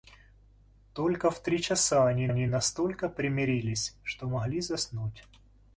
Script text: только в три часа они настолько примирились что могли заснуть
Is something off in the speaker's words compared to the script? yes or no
yes